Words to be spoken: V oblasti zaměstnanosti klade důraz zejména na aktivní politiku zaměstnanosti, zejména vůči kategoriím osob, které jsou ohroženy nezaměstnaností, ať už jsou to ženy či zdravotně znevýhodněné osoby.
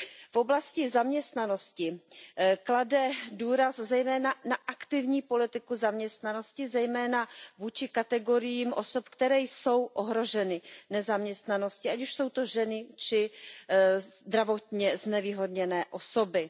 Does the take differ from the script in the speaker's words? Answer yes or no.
no